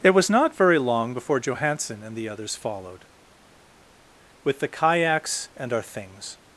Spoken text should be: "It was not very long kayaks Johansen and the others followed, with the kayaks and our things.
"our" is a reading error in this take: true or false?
false